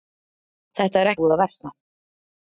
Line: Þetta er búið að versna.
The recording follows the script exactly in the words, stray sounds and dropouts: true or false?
true